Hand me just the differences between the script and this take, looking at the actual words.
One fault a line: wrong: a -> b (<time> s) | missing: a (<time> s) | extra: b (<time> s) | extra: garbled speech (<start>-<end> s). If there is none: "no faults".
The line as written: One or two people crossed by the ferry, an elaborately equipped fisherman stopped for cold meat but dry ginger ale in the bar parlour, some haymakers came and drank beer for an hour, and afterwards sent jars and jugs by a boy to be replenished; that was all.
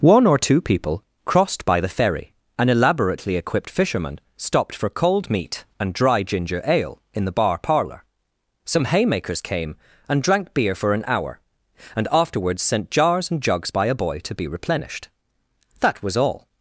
wrong: but -> and (5.8 s)